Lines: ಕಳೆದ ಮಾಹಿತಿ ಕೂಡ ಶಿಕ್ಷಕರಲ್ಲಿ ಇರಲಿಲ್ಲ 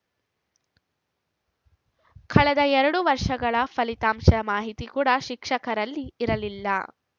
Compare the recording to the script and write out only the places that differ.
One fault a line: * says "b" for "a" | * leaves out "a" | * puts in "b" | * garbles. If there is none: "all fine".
* puts in "ಎರಡು ವರ್ಷಗಳ ಫಲಿತಾಂಶದ"